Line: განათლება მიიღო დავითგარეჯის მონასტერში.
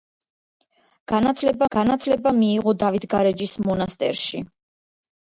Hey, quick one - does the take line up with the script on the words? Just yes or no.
no